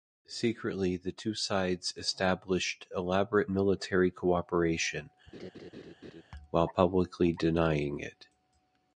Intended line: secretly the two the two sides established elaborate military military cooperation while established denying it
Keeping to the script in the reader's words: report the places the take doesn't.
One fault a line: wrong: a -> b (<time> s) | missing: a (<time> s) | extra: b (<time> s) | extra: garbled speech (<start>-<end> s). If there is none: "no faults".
missing: the two (1.4 s)
missing: military (4.1 s)
wrong: established -> publicly (6.7 s)